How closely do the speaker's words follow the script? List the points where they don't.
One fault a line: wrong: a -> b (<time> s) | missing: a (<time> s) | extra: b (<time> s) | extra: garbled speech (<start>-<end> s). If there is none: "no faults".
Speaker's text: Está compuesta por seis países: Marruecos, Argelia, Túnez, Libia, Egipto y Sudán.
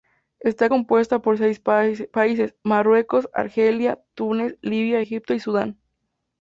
no faults